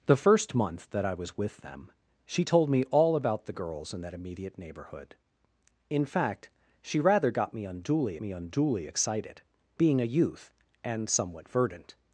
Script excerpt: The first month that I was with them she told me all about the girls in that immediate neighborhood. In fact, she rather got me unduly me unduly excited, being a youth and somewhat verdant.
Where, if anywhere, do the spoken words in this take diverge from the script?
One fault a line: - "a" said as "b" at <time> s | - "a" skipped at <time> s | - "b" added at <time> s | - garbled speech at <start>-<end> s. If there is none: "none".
none